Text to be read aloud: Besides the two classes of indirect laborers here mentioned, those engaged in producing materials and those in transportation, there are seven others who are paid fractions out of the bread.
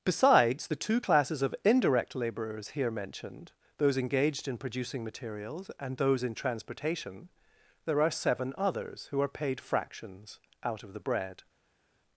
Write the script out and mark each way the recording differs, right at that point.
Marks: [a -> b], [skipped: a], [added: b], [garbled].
Besides the two classes of indirect laborers here mentioned, those engaged in producing materials and those in transportation, there are seven others who are paid fractions out of the bread.